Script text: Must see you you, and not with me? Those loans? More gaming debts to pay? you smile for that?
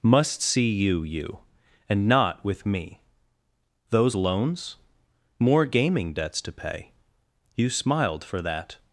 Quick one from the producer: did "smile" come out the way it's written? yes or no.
no